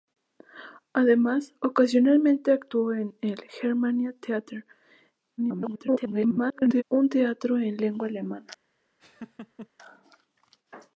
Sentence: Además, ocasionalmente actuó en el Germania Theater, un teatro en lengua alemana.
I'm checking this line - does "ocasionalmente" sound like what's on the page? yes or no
yes